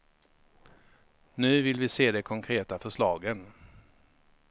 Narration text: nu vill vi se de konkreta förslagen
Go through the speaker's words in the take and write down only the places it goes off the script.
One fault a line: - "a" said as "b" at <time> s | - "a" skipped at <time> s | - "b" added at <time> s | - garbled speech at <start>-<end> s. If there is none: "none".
none